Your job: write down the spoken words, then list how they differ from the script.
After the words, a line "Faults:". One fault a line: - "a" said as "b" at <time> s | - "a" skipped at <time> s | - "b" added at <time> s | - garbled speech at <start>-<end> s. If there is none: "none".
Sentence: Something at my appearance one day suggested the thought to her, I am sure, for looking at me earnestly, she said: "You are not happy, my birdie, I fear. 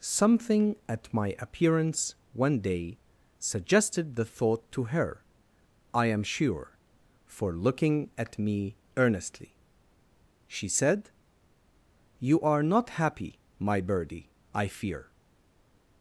Something at my appearance one day suggested the thought to her, I am sure, for looking at me earnestly, she said: "You are not happy, my birdie, I fear.
Faults:
none